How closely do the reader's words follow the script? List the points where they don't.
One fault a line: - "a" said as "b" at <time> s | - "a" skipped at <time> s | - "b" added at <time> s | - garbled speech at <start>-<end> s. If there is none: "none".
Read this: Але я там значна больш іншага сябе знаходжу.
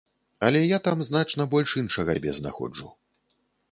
none